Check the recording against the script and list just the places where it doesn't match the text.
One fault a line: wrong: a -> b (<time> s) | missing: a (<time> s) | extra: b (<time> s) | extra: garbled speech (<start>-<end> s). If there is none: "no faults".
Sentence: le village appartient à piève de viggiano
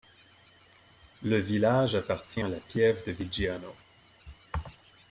extra: la (2.5 s)